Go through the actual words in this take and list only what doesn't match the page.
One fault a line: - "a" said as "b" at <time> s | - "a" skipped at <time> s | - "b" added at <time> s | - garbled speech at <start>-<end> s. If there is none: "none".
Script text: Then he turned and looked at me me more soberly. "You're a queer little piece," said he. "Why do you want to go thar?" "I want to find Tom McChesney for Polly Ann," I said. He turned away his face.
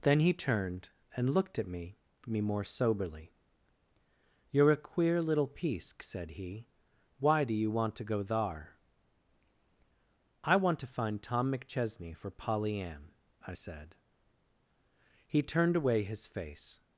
none